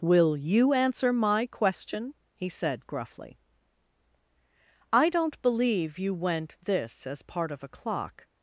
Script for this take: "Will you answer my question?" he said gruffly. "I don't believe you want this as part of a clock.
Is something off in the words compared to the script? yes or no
yes